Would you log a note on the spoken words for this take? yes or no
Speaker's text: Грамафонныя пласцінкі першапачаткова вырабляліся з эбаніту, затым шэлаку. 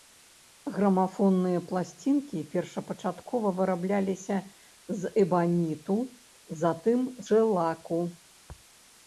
no